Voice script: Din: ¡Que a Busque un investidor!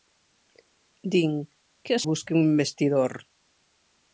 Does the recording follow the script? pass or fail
pass